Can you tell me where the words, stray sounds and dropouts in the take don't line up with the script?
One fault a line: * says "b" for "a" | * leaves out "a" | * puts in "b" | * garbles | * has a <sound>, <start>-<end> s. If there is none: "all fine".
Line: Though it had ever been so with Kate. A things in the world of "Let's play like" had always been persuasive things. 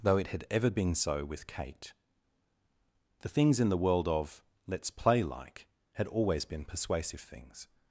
* says "The" for "A"